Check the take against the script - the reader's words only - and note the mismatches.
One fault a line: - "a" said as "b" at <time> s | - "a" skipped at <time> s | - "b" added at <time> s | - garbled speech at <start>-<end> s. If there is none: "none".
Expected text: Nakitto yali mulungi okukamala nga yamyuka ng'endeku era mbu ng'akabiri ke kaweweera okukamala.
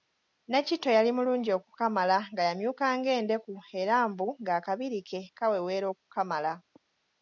none